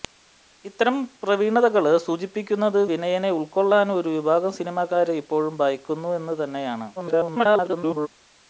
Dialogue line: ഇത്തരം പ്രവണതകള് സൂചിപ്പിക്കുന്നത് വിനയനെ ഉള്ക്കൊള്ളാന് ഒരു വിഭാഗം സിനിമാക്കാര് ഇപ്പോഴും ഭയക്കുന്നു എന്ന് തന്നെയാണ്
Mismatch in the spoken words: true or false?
true